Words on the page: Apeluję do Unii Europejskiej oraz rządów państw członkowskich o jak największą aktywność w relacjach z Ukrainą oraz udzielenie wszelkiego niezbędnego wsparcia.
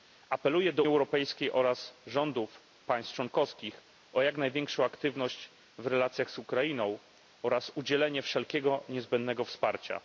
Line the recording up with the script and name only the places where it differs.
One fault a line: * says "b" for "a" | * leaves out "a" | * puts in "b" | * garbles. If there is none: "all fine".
* leaves out "Unii"